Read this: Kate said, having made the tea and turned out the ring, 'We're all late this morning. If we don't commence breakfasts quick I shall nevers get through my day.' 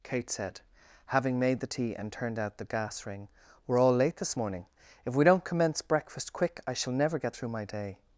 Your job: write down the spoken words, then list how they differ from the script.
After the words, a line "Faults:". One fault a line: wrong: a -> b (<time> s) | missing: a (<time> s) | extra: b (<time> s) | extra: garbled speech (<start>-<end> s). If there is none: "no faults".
Kate said, having made the tea and turned out the gas ring, 'We're all late this morning. If we don't commence breakfast quick I shall never get through my day.'
Faults:
extra: gas (2.6 s)
wrong: breakfasts -> breakfast (5.8 s)
wrong: nevers -> never (6.9 s)